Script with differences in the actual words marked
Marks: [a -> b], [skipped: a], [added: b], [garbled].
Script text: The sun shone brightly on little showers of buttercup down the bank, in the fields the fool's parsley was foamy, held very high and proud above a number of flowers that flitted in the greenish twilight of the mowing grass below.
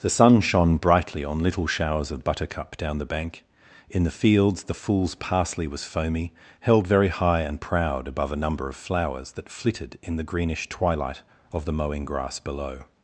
The sun shone brightly on little showers of buttercup down the bank, in the fields the fool's parsley was foamy, held very high and proud above a number of flowers that flitted in the greenish twilight of the mowing grass below.